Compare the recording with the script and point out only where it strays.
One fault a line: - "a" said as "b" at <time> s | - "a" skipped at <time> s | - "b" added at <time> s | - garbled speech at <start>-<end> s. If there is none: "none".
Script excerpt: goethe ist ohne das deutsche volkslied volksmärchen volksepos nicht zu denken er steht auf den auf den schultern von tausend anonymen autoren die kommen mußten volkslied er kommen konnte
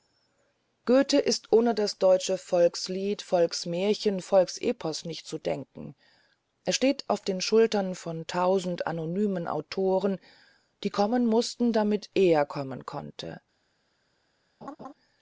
- "auf den" skipped at 7.4 s
- "volkslied" said as "damit" at 11.7 s